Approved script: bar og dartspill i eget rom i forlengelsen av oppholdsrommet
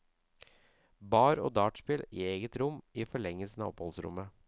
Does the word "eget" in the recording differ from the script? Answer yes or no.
no